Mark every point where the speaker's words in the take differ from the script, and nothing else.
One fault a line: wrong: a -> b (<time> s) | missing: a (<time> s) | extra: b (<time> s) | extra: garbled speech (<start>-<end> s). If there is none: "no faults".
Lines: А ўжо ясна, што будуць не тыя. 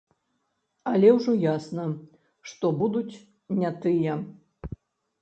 wrong: А -> Але (0.9 s)